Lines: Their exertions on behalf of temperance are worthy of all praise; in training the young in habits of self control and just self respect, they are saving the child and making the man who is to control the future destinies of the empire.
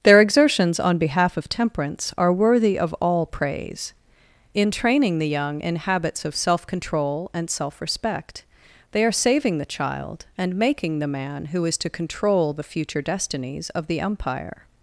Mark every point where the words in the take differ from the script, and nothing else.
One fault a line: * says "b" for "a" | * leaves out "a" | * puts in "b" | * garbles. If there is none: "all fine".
* leaves out "just"